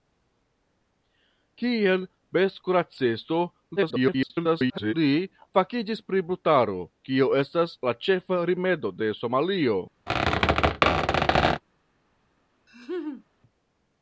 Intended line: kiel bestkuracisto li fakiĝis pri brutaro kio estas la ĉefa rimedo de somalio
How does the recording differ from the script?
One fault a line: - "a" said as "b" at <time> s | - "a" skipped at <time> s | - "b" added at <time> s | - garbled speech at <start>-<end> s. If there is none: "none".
- garbled speech at 3.8-4.9 s